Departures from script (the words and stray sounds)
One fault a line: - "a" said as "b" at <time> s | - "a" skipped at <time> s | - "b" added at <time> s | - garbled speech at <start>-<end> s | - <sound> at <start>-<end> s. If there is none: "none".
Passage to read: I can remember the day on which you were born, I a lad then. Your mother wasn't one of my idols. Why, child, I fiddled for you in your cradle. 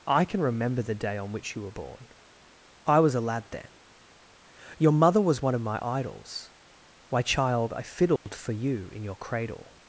- "was" added at 3.0 s
- "wasn't" said as "was" at 5.2 s
- dropout at 8.2-8.3 s